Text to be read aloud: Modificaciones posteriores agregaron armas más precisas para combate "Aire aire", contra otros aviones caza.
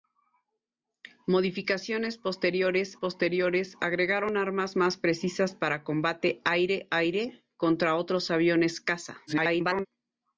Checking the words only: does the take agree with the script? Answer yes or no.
no